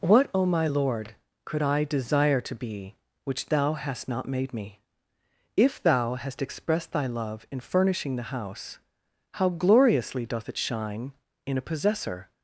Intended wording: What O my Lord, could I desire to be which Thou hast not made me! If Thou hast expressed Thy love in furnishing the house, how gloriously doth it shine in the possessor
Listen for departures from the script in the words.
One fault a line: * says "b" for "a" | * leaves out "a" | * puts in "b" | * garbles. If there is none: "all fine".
* says "a" for "the"